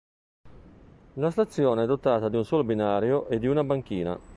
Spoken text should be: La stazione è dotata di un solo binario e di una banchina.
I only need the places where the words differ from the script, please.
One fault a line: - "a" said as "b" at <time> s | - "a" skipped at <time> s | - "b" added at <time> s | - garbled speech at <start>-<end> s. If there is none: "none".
none